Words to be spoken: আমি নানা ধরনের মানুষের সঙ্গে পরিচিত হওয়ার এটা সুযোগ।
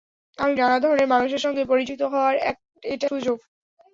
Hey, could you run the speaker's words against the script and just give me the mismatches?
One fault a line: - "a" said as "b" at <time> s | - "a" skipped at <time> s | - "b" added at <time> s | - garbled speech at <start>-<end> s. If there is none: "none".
none